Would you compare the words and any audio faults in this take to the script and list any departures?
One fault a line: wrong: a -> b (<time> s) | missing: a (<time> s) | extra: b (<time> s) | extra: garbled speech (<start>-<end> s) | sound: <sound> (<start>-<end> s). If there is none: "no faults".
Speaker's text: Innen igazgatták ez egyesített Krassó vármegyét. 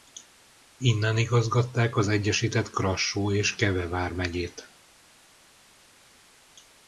wrong: ez -> az (1.9 s)
extra: és Keve (3.3 s)